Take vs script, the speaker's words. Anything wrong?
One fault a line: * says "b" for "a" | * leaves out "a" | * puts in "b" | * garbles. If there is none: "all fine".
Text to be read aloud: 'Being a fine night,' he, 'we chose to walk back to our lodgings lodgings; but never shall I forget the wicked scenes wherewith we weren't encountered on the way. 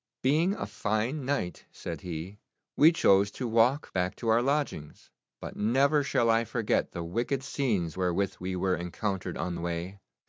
* puts in "said"
* leaves out "lodgings"
* says "were" for "weren't"